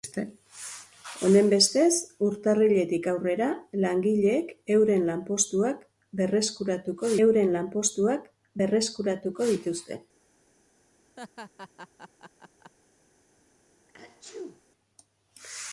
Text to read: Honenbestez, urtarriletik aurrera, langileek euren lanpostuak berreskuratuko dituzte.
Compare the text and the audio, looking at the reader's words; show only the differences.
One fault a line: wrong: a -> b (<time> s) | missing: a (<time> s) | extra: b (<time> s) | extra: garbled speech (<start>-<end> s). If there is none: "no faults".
extra: euren lanpostuak berreskuratuko (7.3 s)